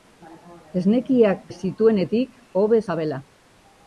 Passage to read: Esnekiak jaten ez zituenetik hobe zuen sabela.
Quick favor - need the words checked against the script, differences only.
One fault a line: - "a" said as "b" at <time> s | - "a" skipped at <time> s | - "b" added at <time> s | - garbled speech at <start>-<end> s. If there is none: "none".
- "jaten" skipped at 1.4 s
- "zuen" skipped at 2.8 s